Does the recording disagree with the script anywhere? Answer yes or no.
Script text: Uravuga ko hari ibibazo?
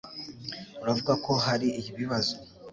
no